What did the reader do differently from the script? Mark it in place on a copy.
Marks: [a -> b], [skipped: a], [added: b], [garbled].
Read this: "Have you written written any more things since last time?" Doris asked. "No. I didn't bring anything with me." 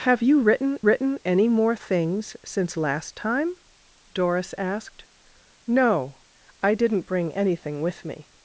"Have you written written any more things since last time?" Doris asked. "No. I didn't bring anything with me."